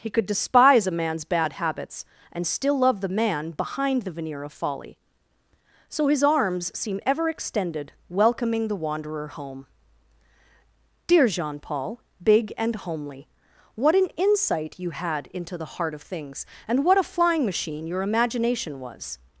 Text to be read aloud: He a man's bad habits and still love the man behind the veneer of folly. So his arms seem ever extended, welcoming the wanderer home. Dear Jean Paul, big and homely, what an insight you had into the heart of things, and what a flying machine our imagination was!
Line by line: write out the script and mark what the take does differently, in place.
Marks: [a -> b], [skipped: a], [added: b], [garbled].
He [added: could despise] a man's bad habits and still love the man behind the veneer of folly. So his arms seem ever extended, welcoming the wanderer home. Dear Jean Paul, big and homely, what an insight you had into the heart of things, and what a flying machine [our -> your] imagination was!